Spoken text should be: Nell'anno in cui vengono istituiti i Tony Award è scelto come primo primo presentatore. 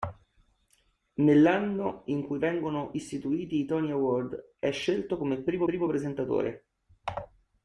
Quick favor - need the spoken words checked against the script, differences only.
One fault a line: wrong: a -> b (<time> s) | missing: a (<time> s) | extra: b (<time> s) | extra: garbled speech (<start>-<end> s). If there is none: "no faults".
no faults